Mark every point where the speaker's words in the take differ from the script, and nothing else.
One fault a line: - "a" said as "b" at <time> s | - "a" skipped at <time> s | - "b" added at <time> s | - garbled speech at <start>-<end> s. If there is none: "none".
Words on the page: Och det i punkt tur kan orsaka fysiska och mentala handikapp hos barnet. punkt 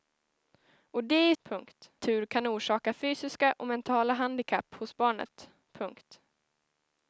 none